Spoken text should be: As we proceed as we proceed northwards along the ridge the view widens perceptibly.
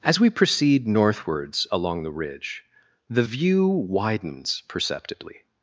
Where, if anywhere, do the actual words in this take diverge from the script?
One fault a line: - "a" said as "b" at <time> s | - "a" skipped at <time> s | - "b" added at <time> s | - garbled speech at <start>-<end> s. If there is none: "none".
- "as we proceed" skipped at 0.9 s